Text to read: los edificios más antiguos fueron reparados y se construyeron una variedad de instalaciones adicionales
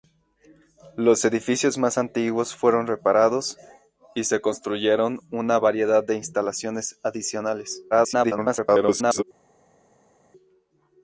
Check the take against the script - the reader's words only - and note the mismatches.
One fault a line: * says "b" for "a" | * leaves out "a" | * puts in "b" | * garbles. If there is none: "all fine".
* garbles